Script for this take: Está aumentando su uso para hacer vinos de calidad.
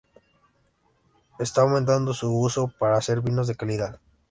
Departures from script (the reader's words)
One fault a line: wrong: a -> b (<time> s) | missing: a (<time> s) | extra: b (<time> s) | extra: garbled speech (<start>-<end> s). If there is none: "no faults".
no faults